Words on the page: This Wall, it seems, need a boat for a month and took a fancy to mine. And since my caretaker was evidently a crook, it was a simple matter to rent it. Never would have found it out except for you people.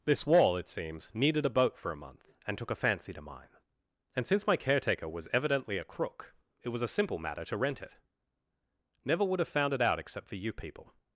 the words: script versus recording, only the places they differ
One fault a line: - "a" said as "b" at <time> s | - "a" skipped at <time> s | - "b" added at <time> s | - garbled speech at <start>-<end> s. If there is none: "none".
- "need" said as "needed" at 1.1 s